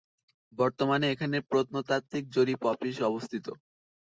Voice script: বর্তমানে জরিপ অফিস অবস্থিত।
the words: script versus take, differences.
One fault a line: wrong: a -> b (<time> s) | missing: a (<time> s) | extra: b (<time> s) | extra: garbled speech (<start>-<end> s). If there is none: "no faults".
extra: এখানে প্রত্নতাত্ত্বিক (1.1 s)